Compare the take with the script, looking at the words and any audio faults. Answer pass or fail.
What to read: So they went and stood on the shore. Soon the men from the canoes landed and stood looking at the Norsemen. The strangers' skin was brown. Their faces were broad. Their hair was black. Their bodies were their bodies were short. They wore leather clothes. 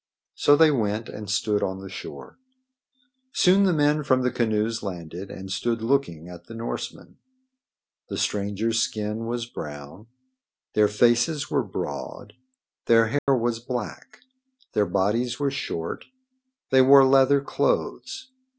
fail